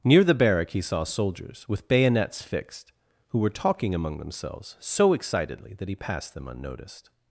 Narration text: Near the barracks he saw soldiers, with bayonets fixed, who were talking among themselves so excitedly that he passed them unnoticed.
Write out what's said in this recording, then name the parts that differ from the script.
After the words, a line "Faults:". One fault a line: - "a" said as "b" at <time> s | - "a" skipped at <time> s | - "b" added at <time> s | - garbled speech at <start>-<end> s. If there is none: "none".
Near the barrack he saw soldiers, with bayonets fixed, who were talking among themselves so excitedly that he passed them unnoticed.
Faults:
- "barracks" said as "barrack" at 0.3 s